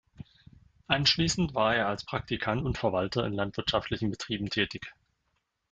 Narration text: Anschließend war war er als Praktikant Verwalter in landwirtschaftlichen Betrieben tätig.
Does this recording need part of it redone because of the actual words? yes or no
yes